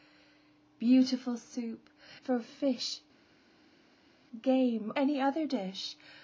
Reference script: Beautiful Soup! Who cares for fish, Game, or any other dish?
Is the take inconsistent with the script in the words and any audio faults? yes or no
yes